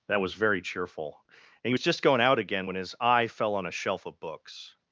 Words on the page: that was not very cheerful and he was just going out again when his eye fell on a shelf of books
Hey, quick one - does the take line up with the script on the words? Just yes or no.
no